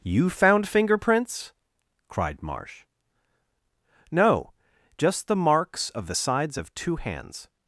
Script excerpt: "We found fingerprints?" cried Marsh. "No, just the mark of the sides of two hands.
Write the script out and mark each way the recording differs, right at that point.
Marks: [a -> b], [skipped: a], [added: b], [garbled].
["We -> You] found fingerprints?" cried Marsh. "No, just the [mark -> marks] of the sides of two hands.